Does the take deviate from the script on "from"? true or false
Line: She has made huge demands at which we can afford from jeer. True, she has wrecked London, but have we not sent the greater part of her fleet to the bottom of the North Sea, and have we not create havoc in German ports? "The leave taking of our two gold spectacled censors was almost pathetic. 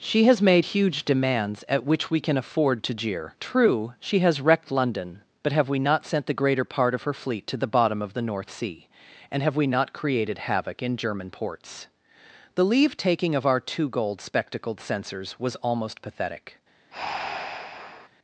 true